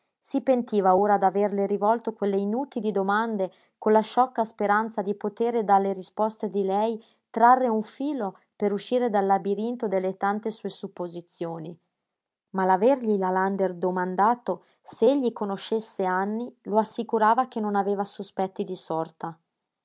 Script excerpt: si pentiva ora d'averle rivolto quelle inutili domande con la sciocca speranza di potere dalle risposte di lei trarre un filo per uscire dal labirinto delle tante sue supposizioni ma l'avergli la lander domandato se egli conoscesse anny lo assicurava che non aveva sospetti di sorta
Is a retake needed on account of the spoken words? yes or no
no